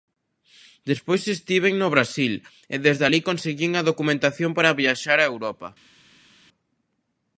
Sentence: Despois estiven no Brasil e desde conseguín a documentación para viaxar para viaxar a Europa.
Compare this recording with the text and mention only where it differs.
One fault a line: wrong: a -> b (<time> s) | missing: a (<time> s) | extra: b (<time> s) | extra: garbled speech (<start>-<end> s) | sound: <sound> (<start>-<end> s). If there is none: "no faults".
extra: alí (3.1 s)
missing: para viaxar (5.2 s)